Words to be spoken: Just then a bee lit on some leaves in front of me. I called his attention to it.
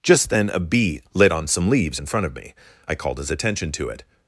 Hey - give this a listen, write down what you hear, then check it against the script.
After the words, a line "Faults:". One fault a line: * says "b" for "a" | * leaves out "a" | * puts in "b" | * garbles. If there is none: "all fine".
Just then a bee lit on some leaves in front of me. I called his attention to it.
Faults:
all fine